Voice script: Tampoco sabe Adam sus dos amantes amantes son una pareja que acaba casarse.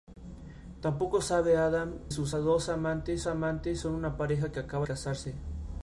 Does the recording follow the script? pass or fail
pass